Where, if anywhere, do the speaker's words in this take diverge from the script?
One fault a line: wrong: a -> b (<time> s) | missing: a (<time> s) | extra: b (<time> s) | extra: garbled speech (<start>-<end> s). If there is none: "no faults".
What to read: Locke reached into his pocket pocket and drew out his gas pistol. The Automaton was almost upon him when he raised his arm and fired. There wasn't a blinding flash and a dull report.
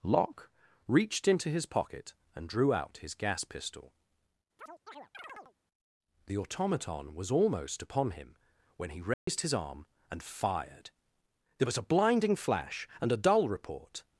missing: pocket (2.1 s)
wrong: wasn't -> was (11.6 s)